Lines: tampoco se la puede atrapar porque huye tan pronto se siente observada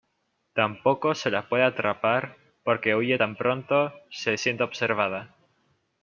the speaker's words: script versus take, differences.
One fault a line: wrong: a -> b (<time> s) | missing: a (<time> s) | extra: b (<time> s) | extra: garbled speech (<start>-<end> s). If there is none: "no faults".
no faults